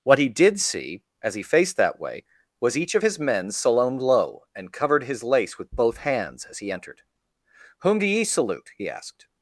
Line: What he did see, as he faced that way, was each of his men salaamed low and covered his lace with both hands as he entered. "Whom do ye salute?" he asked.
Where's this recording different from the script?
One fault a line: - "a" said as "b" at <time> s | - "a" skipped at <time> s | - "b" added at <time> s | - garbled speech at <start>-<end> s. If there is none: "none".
none